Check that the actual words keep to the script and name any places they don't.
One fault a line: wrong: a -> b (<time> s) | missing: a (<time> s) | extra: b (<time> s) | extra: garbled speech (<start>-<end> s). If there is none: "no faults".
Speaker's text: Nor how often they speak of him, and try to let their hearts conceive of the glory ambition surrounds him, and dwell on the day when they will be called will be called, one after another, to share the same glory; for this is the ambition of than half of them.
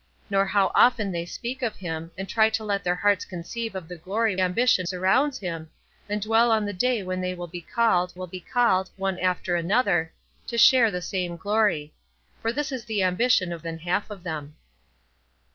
no faults